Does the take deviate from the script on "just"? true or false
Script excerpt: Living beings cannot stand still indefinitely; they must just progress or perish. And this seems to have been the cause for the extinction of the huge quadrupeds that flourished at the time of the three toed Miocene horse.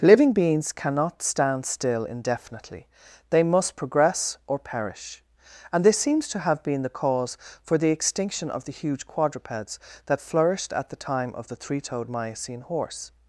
true